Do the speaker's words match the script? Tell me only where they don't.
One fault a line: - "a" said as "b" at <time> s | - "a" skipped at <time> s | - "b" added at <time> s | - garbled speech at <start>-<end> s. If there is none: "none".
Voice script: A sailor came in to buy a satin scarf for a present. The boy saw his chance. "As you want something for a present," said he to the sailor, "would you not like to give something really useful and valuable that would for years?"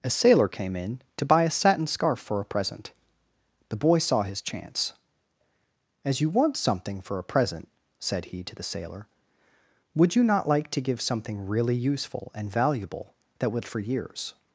none